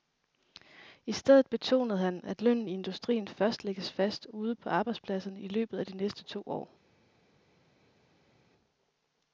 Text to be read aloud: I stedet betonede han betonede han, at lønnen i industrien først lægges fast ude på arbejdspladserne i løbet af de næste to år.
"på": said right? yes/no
yes